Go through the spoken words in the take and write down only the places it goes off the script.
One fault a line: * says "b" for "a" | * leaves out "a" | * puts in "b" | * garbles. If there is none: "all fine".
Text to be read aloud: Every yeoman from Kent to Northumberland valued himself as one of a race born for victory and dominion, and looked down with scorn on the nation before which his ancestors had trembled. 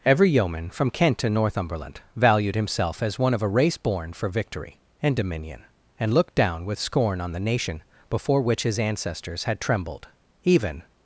* puts in "Even"